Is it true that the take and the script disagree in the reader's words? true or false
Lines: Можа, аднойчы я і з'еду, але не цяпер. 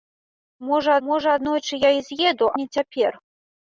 true